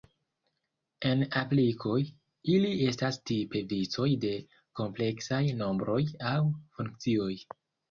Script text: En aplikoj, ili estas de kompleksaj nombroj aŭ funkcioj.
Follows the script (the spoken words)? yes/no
no